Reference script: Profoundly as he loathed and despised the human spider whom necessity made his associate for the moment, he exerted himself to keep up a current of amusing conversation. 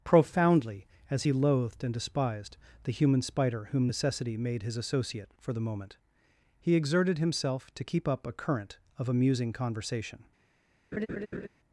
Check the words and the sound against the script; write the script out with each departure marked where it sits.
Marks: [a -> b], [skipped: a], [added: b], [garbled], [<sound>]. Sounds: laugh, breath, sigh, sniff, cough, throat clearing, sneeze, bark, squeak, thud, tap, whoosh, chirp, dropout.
Profoundly as he loathed and despised the human spider whom necessity made his associate for the moment, he exerted himself to keep up a current of amusing conversation. [laugh]